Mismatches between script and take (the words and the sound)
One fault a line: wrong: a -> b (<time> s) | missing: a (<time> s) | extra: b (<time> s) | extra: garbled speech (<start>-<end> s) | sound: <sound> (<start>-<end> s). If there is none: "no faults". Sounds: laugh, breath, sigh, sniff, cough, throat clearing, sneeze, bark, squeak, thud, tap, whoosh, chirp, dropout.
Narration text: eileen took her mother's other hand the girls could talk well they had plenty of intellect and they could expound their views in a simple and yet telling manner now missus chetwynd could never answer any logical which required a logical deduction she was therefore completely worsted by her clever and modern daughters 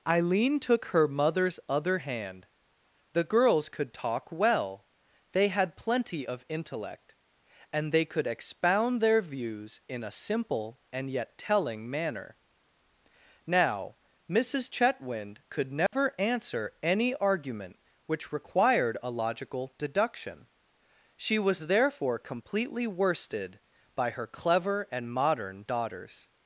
sound: dropout (15.9-15.9 s)
wrong: logical -> argument (17.1 s)